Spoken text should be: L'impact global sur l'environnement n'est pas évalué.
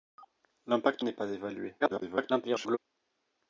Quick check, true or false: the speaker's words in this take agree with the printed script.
false